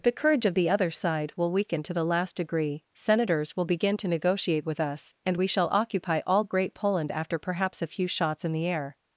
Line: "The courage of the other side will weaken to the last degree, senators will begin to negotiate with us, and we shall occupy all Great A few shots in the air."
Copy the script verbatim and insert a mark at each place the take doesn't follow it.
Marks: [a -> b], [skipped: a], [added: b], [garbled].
"The courage of the other side will weaken to the last degree, senators will begin to negotiate with us, and we shall occupy all Great [added: Poland after perhaps] A few shots in the air."